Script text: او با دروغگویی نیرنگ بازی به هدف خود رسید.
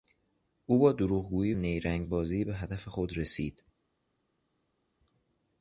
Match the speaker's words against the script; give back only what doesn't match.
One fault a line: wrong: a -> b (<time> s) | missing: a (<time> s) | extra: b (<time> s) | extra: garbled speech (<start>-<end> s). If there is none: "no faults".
no faults